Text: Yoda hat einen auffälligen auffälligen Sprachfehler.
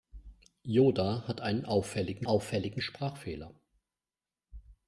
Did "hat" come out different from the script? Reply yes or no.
no